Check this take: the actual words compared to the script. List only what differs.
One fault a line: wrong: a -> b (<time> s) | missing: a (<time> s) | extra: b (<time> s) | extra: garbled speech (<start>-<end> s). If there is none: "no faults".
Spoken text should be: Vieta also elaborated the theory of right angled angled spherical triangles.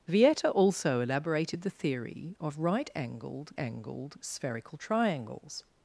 no faults